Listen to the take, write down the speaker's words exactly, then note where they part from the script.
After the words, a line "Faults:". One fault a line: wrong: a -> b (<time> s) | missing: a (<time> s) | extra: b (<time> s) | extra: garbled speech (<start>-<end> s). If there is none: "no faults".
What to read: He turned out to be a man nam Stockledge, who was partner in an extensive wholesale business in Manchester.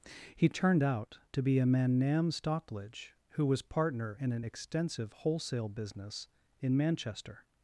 He turned out to be a man nam Stockledge, who was partner in an extensive wholesale business in Manchester.
Faults:
no faults